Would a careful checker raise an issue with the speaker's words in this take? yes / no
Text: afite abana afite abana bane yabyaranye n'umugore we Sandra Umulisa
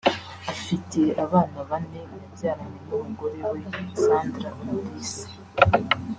yes